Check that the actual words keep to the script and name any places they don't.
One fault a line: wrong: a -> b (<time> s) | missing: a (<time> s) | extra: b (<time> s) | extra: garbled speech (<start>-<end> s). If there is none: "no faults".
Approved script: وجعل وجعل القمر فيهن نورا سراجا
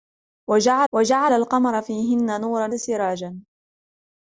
no faults